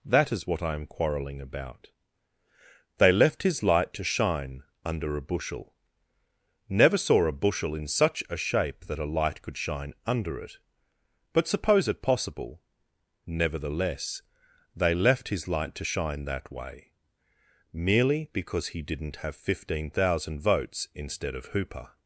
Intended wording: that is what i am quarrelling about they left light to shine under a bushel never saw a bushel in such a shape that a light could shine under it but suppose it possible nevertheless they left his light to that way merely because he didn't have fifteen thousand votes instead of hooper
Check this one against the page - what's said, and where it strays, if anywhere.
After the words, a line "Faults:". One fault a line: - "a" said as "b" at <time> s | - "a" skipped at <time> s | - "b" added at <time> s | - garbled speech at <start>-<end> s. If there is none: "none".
that is what i am quarrelling about they left his light to shine under a bushel never saw a bushel in such a shape that a light could shine under it but suppose it possible nevertheless they left his light to shine that way merely because he didn't have fifteen thousand votes instead of hooper
Faults:
- "his" added at 3.4 s
- "shine" added at 15.8 s